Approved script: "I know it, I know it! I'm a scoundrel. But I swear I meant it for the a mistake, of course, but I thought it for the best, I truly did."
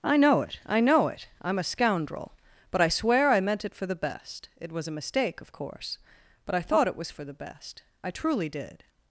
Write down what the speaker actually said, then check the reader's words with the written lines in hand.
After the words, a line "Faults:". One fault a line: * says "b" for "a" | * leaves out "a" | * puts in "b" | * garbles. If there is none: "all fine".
"I know it, I know it! I'm a scoundrel. But I swear I meant it for the best. It was a mistake, of course, but I thought it was for the best, I truly did."
Faults:
* puts in "best It was"
* puts in "was"